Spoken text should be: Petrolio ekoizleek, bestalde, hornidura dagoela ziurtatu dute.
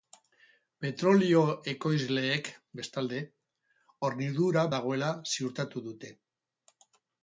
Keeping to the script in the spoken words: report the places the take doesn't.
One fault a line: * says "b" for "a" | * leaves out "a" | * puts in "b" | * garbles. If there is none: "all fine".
all fine